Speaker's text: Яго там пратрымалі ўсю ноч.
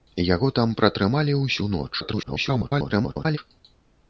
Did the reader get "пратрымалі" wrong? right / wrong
right